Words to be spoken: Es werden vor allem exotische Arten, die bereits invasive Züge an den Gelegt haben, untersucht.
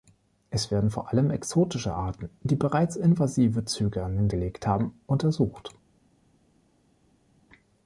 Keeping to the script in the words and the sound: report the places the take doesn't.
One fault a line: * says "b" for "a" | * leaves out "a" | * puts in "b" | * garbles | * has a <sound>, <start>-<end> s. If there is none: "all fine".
all fine